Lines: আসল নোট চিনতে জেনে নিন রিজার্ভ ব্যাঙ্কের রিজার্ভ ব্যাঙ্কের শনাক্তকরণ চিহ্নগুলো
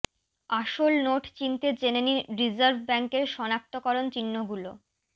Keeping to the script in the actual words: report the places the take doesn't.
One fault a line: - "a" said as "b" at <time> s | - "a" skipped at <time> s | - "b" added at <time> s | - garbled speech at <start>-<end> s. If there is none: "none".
- "রিজার্ভ ব্যাঙ্কের" skipped at 3.2 s